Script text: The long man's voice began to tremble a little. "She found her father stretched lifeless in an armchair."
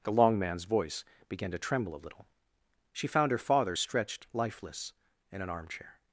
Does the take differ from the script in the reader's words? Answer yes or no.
no